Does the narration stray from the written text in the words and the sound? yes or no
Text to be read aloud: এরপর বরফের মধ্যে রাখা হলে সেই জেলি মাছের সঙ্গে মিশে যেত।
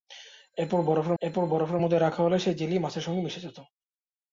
yes